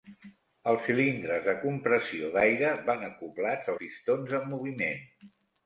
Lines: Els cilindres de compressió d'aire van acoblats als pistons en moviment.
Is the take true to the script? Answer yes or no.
no